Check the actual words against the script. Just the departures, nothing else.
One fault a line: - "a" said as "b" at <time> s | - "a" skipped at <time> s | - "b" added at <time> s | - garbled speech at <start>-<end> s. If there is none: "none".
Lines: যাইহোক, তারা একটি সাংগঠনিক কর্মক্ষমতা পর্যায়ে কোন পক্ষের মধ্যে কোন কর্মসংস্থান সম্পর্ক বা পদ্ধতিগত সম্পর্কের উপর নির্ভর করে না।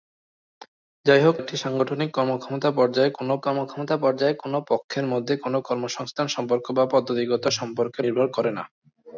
- "তারা" skipped at 1.4 s
- "কর্মক্ষমতা পর্যায়ে কোন" added at 3.4 s
- "উপর" skipped at 8.0 s